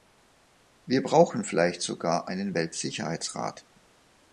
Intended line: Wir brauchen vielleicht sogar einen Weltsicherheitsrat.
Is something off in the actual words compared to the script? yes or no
no